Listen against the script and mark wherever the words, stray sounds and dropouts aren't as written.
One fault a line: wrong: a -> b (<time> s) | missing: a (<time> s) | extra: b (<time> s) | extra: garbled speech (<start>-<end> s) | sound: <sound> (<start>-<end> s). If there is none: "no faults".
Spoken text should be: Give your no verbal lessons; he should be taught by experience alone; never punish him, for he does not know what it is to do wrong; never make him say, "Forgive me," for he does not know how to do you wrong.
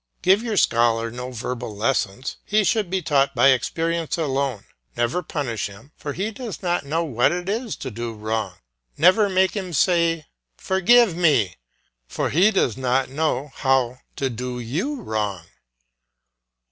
extra: scholar (0.6 s)